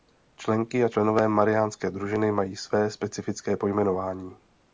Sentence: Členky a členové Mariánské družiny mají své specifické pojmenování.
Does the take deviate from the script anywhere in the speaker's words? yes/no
no